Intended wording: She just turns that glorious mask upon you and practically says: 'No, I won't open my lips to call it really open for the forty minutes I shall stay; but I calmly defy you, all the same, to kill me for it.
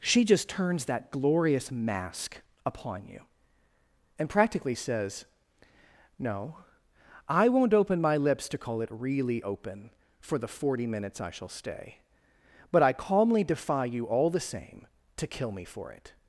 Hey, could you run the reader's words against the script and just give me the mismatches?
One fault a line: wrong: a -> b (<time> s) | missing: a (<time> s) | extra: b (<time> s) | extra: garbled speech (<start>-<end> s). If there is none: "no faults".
no faults